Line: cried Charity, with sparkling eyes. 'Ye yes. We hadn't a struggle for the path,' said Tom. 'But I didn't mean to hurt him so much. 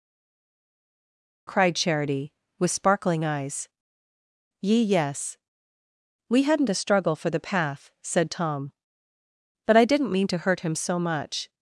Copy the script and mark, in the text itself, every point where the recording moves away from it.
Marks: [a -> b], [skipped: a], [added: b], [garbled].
cried Charity, with sparkling eyes. 'Ye yes. We hadn't a struggle for the path,' said Tom. 'But I didn't mean to hurt him so much.